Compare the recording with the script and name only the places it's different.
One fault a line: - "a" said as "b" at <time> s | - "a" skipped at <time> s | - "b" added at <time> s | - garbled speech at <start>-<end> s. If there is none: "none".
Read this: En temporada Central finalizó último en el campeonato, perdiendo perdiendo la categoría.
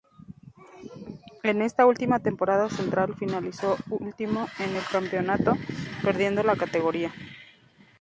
- "esta última" added at 1.6 s
- "perdiendo" skipped at 6.4 s